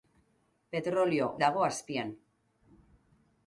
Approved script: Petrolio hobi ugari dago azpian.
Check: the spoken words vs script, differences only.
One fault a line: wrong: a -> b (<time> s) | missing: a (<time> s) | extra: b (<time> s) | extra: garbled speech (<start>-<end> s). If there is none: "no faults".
missing: hobi ugari (1.3 s)